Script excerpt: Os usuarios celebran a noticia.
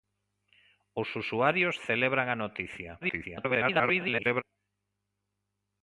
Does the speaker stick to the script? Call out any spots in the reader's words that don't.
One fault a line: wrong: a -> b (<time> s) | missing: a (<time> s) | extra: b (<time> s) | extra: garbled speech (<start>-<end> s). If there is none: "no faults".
extra: garbled speech (3.0-4.4 s)